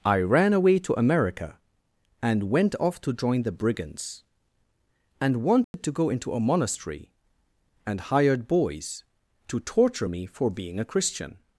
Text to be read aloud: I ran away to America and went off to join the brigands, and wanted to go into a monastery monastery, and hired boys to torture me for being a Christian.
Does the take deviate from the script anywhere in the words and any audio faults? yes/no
yes